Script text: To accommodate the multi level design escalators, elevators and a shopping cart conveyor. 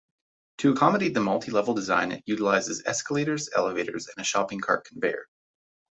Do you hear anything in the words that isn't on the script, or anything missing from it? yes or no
yes